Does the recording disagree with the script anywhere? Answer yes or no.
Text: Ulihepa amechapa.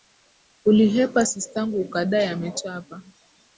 yes